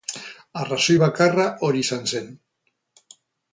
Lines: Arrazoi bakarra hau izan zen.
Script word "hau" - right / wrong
wrong